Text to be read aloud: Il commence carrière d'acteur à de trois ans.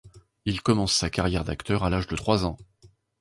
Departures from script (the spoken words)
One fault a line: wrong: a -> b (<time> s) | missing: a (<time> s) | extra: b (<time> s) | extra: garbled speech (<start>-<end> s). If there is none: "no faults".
extra: sa (0.9 s)
extra: l'âge (1.9 s)